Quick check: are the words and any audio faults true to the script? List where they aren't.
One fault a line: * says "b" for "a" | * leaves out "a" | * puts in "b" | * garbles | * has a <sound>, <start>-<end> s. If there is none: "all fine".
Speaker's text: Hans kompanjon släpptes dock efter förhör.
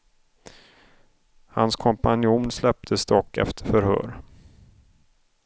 all fine